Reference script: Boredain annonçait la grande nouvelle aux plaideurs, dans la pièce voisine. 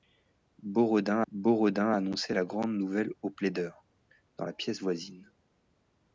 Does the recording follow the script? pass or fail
fail